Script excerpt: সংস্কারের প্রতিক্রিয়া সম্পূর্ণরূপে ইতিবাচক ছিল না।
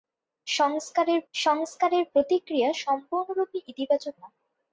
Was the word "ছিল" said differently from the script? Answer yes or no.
yes